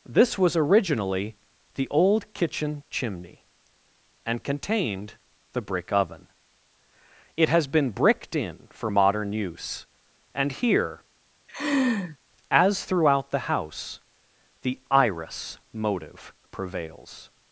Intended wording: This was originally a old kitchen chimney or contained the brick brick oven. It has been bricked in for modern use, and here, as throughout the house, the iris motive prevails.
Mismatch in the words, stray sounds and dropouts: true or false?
true